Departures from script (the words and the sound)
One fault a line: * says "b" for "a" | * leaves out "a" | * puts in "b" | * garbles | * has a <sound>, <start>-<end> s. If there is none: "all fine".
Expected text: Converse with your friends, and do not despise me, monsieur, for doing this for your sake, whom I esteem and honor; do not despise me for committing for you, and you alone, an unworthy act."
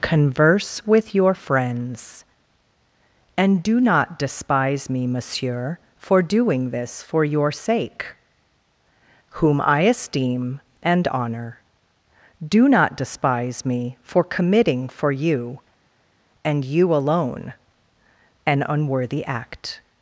all fine